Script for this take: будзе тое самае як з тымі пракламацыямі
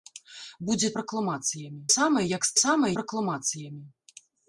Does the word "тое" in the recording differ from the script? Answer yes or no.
yes